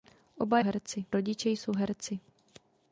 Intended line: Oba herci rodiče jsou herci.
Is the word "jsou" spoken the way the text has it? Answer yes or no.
yes